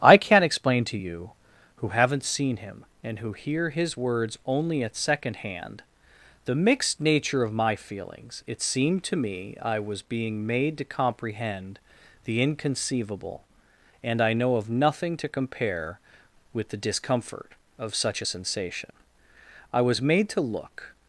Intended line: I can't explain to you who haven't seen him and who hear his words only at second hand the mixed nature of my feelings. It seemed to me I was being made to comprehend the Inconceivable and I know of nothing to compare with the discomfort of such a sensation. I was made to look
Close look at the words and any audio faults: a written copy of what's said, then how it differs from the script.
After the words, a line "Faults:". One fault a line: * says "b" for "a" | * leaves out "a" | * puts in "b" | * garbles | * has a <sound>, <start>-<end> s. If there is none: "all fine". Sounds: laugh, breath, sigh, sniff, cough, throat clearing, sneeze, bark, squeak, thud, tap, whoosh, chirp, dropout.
I can't explain to you who haven't seen him and who hear his words only at second hand the mixed nature of my feelings. It seemed to me I was being made to comprehend the Inconceivable and I know of nothing to compare with the discomfort of such a sensation. I was made to look
Faults:
all fine